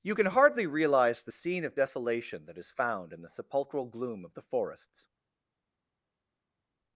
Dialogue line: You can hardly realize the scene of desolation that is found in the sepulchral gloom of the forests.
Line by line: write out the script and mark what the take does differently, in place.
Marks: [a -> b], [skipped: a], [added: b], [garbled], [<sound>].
You can hardly realize the scene of desolation that is found in the sepulchral gloom of the forests.